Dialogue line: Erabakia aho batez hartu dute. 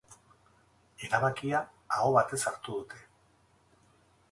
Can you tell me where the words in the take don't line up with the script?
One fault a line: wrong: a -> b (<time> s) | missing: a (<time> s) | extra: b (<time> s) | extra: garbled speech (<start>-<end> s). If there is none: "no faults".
no faults